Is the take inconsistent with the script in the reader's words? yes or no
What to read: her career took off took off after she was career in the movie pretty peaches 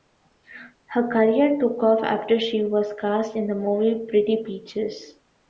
yes